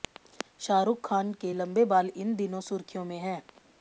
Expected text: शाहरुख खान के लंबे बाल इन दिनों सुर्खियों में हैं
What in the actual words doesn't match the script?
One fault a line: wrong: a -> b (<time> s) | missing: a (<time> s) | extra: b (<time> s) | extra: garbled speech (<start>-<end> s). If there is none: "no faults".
no faults